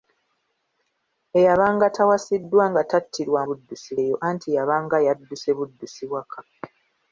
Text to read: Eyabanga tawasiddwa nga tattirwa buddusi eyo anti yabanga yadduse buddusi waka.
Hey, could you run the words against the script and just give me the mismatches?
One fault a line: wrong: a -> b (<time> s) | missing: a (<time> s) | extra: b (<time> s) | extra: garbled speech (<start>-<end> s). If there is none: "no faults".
no faults